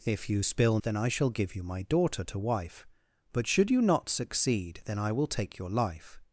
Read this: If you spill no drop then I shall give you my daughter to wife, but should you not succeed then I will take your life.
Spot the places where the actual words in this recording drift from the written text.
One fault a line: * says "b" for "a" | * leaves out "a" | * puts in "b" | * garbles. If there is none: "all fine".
* leaves out "no drop"